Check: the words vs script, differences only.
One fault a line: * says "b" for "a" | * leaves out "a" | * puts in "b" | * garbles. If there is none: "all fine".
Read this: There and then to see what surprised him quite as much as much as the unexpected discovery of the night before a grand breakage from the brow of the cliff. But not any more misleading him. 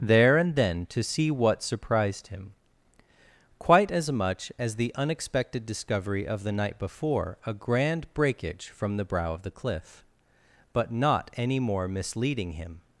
* leaves out "much as"